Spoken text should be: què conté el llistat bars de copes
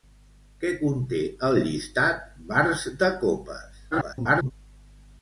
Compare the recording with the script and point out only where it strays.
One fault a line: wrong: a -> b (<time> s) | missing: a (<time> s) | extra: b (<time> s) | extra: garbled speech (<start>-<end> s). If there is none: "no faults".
extra: garbled speech (3.9-4.5 s)